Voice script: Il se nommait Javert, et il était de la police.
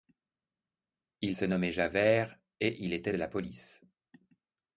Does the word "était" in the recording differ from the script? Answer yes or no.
no